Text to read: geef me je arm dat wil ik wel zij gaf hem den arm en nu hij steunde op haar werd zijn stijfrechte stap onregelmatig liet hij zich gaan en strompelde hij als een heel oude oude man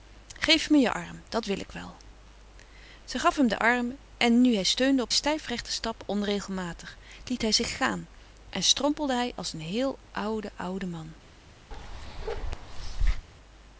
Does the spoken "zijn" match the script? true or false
false